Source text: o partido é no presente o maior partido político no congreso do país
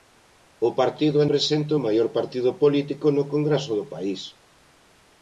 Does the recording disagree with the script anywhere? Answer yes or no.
yes